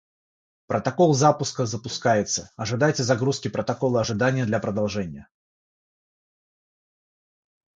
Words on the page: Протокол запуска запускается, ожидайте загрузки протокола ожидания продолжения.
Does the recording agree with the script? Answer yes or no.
no